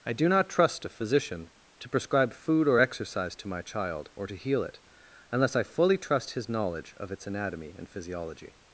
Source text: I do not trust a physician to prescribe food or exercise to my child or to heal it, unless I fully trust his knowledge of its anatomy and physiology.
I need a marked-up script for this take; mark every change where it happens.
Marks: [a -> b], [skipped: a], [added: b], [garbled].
I do not trust a physician to prescribe food or exercise to my child or to heal it, unless I fully trust his knowledge of its anatomy and physiology.